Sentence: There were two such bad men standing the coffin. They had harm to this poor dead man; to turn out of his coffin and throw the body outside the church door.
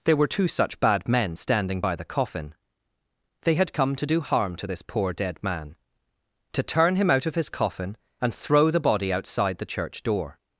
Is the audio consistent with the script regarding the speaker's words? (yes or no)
no